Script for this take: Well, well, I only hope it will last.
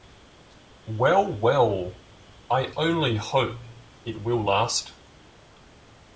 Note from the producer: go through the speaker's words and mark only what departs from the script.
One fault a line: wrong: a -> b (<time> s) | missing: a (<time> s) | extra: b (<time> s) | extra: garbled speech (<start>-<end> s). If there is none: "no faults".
no faults